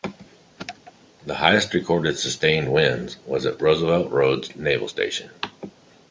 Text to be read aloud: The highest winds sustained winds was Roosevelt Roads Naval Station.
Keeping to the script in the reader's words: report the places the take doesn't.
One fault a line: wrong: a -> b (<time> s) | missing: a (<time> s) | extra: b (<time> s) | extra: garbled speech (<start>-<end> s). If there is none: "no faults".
wrong: winds -> recorded (1.8 s)
extra: at (3.5 s)